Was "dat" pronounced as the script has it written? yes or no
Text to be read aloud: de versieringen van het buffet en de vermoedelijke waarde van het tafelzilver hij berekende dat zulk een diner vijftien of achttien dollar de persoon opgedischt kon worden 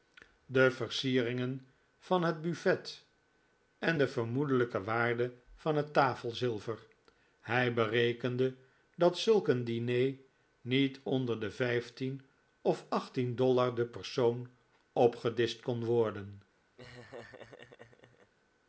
yes